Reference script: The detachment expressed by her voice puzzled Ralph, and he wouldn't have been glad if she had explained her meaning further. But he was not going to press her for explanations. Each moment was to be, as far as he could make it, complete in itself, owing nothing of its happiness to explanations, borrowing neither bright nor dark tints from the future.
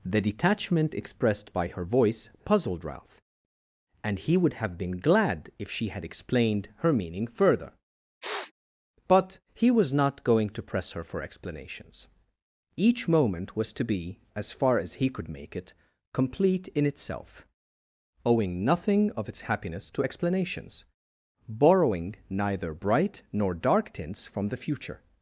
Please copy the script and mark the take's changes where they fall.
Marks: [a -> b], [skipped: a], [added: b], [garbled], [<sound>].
The detachment expressed by her voice puzzled Ralph, and he [wouldn't -> would] have been glad if she had explained her meaning further. [sniff] But he was not going to press her for explanations. Each moment was to be, as far as he could make it, complete in itself, owing nothing of its happiness to explanations, borrowing neither bright nor dark tints from the future.